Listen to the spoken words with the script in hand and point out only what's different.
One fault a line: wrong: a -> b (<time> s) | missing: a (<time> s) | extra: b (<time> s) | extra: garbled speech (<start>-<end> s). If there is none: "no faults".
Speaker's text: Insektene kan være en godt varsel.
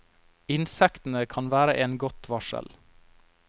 no faults